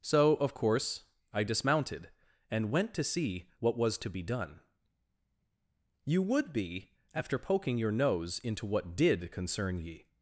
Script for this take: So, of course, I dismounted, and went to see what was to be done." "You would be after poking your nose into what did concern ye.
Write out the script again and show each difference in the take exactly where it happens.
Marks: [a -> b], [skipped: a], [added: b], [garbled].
So, of course, I dismounted, and went to see what was to be done." "You would be after poking your nose into what did concern ye.